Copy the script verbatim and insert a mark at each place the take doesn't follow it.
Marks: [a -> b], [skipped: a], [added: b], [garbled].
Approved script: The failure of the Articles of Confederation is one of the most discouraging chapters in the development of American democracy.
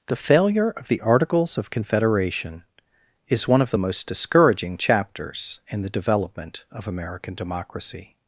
The failure of the Articles of Confederation is one of the most discouraging chapters in the development of American democracy.